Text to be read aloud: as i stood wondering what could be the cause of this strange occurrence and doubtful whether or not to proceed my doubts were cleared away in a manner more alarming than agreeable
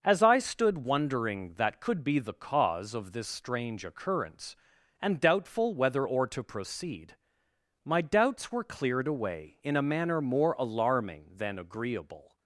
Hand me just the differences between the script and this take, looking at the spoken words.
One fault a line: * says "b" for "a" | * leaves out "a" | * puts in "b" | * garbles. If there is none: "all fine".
* says "that" for "what"
* leaves out "not"